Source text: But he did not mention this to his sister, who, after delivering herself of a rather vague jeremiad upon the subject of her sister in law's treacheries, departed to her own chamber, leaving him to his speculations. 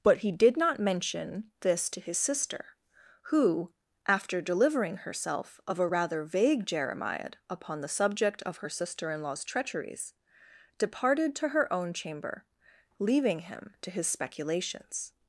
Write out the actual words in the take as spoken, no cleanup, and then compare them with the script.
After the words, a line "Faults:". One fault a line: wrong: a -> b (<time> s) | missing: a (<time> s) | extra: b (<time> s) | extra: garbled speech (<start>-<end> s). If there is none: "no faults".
But he did not mention this to his sister, who, after delivering herself of a rather vague jeremiad upon the subject of her sister in law's treacheries, departed to her own chamber, leaving him to his speculations.
Faults:
no faults